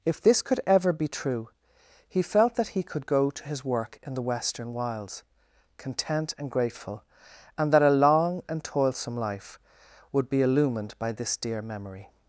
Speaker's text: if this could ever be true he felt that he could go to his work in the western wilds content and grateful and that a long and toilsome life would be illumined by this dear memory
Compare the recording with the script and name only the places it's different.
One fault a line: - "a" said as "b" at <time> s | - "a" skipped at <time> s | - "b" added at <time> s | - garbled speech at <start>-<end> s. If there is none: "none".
none